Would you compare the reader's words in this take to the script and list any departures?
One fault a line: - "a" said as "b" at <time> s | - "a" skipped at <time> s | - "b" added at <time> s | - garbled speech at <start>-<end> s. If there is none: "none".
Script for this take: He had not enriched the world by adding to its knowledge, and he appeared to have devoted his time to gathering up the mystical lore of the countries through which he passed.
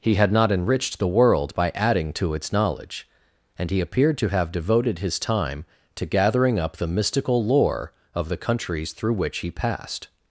none